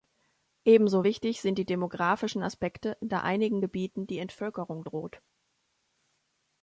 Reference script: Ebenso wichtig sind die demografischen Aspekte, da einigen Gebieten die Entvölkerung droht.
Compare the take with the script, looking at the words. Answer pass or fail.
pass